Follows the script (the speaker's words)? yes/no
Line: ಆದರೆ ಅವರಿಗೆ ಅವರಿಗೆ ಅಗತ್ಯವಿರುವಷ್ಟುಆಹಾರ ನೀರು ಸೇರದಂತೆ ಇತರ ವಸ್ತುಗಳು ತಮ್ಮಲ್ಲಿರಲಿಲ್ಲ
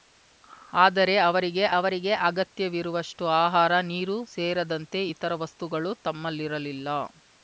yes